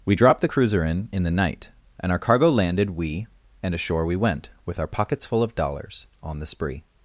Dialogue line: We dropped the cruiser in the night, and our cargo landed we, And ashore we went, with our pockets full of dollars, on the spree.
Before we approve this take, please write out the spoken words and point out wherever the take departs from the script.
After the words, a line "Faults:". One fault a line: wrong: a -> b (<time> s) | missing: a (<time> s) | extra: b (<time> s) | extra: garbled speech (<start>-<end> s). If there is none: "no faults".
We dropped the cruiser in in the night, and our cargo landed we, And ashore we went, with our pockets full of dollars, on the spree.
Faults:
extra: in (1.1 s)